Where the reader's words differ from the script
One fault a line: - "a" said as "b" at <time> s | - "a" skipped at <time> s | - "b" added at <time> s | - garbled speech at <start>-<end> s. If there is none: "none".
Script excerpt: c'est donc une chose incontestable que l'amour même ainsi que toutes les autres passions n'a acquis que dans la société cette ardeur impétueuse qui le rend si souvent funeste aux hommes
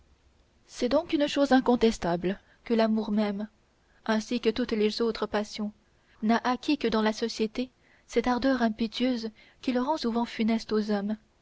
- "si" skipped at 10.0 s